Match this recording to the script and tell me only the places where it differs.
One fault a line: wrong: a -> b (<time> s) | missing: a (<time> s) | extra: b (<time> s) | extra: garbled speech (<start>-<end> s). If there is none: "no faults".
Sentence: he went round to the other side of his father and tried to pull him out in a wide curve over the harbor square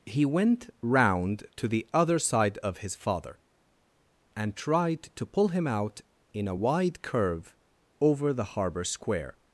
no faults